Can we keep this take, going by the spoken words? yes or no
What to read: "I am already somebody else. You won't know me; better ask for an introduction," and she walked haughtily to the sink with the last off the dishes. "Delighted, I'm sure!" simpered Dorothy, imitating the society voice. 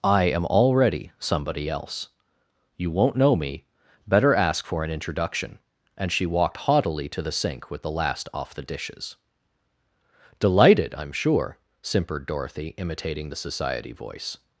yes